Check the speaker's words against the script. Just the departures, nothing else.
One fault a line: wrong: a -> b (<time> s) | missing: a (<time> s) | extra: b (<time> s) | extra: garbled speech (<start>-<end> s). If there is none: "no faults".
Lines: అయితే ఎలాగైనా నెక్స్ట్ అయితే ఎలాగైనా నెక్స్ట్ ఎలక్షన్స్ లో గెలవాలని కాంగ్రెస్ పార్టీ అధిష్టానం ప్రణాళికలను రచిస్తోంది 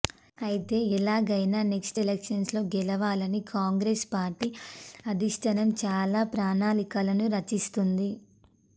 missing: అయితే ఎలాగైనా నెక్స్ట్ (2.0 s)
extra: చాలా (5.8 s)